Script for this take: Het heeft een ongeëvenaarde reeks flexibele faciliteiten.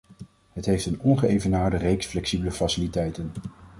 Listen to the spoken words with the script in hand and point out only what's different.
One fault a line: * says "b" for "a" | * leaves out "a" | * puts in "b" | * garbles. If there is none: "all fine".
all fine